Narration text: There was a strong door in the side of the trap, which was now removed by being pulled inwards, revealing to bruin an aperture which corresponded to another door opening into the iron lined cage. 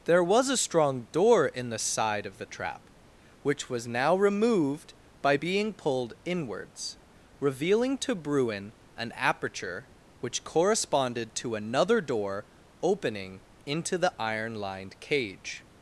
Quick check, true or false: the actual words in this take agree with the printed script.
true